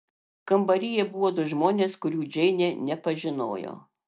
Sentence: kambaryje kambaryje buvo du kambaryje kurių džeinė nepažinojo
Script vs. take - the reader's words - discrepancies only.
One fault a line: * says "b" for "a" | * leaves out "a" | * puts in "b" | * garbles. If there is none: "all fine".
* leaves out "kambaryje"
* says "žmonės" for "kambaryje"